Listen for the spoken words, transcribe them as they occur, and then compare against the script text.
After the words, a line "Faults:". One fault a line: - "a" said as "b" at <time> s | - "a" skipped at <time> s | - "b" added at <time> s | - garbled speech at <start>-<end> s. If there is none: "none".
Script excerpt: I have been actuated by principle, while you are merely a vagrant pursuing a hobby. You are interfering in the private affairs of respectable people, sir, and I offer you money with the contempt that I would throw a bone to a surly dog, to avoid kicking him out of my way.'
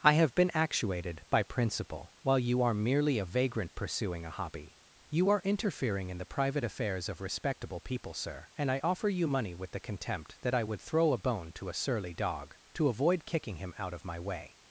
I have been actuated by principle, while you are merely a vagrant pursuing a hobby. You are interfering in the private affairs of respectable people, sir, and I offer you money with the contempt that I would throw a bone to a surly dog, to avoid kicking him out of my way.'
Faults:
none